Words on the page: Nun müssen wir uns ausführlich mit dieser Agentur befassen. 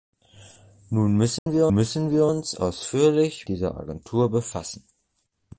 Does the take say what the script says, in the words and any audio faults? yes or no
no